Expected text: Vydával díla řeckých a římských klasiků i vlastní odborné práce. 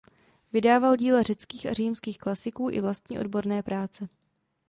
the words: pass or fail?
pass